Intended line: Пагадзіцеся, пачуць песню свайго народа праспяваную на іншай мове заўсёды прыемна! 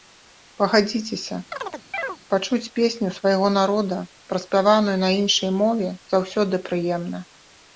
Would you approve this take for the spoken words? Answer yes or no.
yes